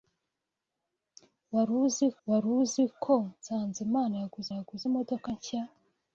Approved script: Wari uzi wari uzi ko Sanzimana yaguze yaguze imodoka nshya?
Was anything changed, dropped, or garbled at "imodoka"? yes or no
no